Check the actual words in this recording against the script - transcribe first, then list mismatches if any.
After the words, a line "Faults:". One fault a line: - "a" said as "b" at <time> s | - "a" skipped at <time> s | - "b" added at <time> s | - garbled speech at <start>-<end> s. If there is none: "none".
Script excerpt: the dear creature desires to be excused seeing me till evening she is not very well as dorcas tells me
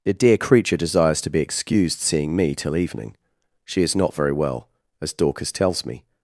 the dear creature desires to be excused seeing me till evening she is not very well as dorcas tells me
Faults:
none